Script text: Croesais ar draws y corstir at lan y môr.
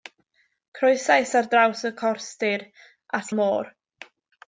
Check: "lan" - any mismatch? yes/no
yes